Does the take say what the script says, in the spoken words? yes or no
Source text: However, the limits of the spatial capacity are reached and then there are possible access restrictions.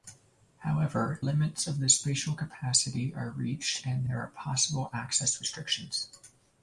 no